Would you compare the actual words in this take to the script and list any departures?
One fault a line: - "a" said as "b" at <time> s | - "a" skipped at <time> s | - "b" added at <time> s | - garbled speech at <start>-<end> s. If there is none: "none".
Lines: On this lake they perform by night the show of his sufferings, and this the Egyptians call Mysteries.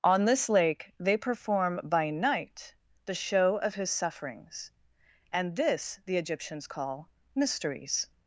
none